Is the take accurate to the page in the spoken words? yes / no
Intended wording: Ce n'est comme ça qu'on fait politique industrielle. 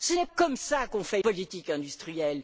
yes